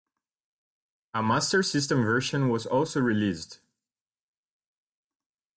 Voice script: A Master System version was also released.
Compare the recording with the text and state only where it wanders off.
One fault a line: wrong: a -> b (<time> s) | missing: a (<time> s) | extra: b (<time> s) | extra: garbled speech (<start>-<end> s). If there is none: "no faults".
no faults